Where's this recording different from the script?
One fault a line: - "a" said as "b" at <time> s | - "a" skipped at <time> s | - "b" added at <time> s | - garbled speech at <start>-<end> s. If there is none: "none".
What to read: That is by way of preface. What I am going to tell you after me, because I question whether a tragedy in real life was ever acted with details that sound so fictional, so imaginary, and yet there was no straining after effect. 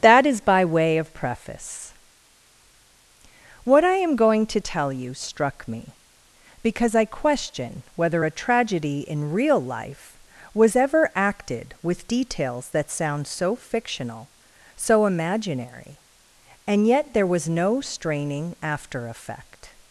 - "after" said as "struck" at 5.1 s